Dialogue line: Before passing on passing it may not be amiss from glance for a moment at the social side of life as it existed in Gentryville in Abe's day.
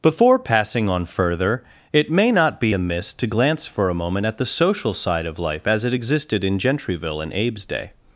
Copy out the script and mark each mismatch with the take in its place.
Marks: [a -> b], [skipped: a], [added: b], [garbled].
Before passing on [passing -> further] it may not be amiss [from -> to] glance for a moment at the social side of life as it existed in Gentryville in Abe's day.